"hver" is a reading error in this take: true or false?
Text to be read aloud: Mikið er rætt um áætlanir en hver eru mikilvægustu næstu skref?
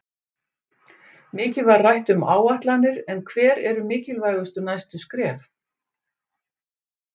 false